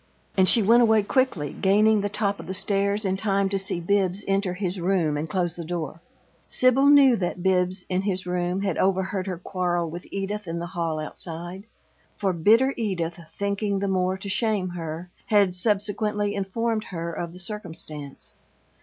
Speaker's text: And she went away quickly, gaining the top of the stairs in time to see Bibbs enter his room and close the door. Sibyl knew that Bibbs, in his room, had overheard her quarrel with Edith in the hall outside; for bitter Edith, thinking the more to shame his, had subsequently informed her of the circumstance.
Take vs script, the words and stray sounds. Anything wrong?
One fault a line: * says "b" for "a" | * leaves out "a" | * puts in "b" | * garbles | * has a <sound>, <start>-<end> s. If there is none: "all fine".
* says "her" for "his"